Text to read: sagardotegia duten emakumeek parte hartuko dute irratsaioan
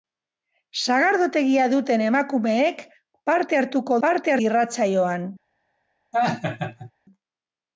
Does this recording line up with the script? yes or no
no